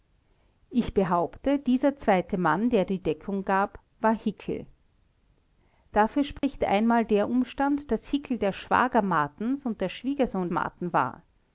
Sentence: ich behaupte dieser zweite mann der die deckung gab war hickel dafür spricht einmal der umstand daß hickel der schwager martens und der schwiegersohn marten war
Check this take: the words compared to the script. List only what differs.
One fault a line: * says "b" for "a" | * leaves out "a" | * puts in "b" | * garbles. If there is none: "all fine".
all fine